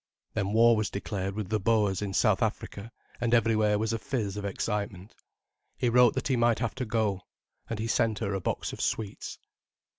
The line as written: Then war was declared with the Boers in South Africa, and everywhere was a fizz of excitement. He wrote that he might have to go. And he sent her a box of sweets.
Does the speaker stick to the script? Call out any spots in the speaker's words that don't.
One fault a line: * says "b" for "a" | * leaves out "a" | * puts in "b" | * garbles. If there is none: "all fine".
all fine